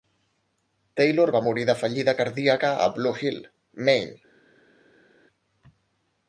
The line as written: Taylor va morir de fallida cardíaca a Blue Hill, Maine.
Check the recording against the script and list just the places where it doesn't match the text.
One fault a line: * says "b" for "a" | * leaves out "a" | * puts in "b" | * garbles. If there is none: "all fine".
all fine